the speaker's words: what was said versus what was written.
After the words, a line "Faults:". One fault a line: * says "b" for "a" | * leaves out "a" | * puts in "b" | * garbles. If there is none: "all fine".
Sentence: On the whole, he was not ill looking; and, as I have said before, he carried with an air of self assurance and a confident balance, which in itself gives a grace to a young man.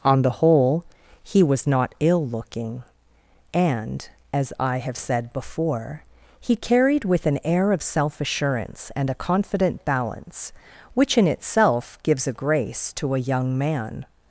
On the whole, he was not ill looking; and, as I have said before, he carried with an air of self assurance and a confident balance, which in itself gives a grace to a young man.
Faults:
all fine